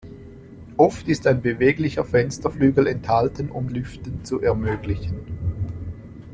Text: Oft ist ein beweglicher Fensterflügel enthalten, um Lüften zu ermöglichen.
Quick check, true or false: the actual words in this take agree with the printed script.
true